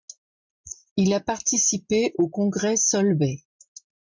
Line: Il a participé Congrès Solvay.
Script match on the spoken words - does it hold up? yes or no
no